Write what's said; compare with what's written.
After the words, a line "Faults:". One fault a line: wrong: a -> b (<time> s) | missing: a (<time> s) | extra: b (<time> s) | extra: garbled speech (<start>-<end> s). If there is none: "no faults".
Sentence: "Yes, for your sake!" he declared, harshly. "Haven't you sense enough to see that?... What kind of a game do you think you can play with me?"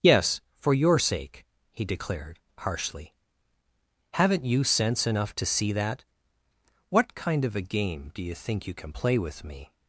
"Yes, for your sake!" he declared, harshly. "Haven't you sense enough to see that?... What kind of a game do you think you can play with me?"
Faults:
no faults